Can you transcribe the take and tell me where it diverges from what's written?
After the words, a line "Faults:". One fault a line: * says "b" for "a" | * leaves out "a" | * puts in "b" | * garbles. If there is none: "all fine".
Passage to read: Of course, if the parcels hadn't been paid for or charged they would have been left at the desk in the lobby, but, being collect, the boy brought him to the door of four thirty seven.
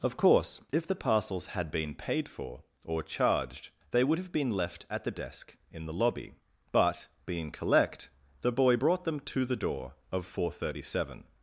Of course, if the parcels had been paid for or charged they would have been left at the desk in the lobby, but, being collect, the boy brought them to the door of four thirty seven.
Faults:
* says "had" for "hadn't"
* says "them" for "him"